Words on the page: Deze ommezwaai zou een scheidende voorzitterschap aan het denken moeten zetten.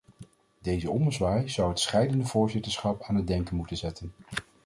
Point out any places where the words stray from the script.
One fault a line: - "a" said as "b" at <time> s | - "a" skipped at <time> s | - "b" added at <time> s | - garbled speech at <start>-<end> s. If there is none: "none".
- "een" said as "het" at 1.7 s